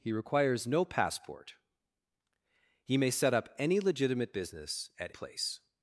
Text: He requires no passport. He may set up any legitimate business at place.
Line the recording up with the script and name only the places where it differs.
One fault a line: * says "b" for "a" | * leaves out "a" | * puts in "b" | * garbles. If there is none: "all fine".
all fine